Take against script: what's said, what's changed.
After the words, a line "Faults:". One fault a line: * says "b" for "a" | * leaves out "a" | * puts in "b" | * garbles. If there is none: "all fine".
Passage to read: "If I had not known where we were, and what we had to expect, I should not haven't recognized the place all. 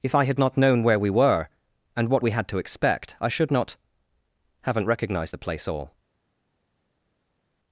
"If I had not known where we were, and what we had to expect, I should not haven't recognized the place all.
Faults:
all fine